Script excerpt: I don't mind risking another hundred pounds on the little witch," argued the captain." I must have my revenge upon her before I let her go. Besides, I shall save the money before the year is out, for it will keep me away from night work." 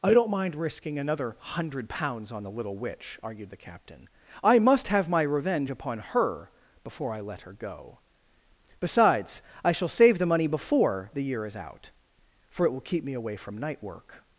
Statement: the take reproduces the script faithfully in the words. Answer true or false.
true